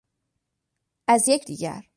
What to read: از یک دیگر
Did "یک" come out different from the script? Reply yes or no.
no